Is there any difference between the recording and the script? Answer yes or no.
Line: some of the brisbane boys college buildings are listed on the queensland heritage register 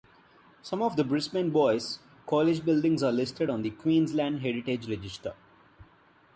no